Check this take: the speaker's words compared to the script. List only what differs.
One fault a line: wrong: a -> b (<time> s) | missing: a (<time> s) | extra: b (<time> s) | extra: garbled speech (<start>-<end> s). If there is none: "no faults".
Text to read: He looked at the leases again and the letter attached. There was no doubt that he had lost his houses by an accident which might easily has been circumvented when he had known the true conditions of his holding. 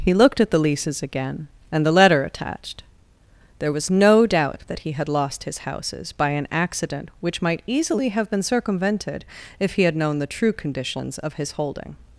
wrong: has -> have (8.1 s)
wrong: when -> if (9.6 s)